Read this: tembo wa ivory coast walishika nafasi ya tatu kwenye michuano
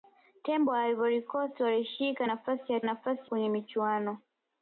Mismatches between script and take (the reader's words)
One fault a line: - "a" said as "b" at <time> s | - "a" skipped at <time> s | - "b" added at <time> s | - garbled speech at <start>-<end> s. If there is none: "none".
- "tatu" said as "nafasi" at 2.8 s